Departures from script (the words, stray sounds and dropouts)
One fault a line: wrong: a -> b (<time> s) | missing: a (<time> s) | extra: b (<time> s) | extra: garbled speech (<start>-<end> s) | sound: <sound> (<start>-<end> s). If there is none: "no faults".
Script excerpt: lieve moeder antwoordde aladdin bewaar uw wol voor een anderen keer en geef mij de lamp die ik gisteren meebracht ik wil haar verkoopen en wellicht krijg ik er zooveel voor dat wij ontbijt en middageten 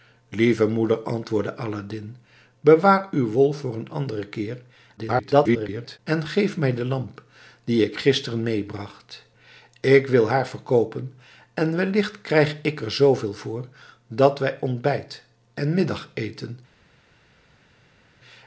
extra: garbled speech (5.0-6.0 s)